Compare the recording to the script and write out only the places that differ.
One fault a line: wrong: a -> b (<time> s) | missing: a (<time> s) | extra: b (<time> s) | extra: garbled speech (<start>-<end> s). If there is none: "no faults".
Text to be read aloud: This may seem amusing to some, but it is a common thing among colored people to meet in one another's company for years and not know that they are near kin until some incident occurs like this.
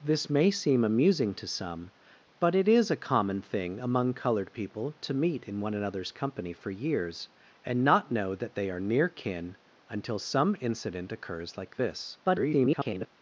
extra: garbled speech (12.2-13.1 s)